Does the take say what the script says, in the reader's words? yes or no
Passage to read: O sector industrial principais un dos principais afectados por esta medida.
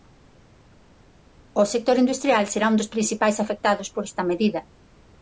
no